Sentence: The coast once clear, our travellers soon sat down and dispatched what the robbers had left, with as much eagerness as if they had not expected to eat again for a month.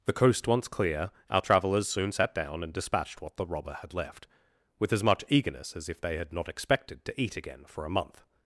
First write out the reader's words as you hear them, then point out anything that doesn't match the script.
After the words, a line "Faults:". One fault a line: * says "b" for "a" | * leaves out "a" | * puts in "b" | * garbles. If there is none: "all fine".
The coast once clear, our travellers soon sat down and dispatched what the robber had left, with as much eagerness as if they had not expected to eat again for a month.
Faults:
* says "robber" for "robbers"